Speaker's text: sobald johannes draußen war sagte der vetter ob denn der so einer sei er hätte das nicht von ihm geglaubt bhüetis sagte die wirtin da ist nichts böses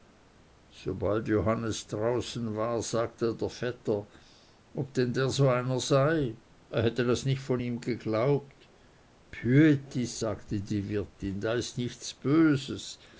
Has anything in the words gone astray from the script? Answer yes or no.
no